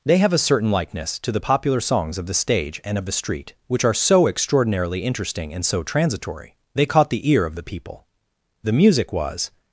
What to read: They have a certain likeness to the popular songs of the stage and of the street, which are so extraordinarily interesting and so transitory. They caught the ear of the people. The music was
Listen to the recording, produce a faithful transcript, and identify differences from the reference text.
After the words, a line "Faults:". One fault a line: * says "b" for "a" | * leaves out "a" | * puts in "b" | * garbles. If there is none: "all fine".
They have a certain likeness to the popular songs of the stage and of the street, which are so extraordinarily interesting and so transitory. They caught the ear of the people. The music was
Faults:
all fine